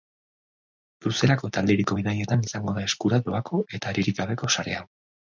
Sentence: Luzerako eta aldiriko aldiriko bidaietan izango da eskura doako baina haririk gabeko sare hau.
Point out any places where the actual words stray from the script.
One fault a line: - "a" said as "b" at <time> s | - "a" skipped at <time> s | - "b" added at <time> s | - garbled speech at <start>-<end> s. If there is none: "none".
- "aldiriko" skipped at 2.0 s
- "baina" said as "eta" at 3.8 s